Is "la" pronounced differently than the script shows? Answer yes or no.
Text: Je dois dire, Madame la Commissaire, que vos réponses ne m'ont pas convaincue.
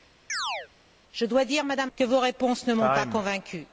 yes